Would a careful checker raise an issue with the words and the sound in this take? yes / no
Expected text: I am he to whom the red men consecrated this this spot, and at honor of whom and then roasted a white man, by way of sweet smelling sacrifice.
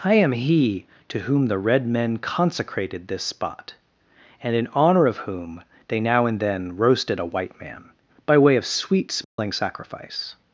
yes